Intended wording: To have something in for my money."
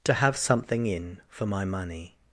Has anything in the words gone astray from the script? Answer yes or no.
no